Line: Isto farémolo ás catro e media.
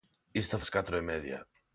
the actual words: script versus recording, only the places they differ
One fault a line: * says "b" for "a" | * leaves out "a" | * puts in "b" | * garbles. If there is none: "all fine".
* leaves out "farémolo"